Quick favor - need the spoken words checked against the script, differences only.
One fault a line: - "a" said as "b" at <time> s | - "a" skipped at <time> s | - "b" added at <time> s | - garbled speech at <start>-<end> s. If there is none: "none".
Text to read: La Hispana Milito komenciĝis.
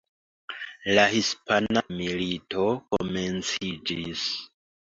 none